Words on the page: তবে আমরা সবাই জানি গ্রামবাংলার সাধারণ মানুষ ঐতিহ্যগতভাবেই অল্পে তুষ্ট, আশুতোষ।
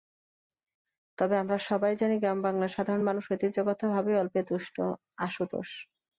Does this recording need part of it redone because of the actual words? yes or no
no